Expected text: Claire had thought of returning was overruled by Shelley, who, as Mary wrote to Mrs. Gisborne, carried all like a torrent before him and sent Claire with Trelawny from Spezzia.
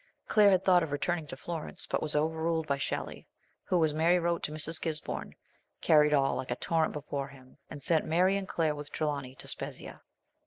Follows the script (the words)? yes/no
no